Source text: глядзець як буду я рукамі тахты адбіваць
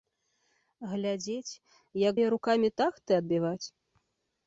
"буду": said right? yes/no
no